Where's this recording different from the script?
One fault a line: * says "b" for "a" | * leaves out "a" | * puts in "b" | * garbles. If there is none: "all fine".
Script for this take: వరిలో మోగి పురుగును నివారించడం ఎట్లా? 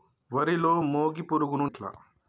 * leaves out "నివారించడం"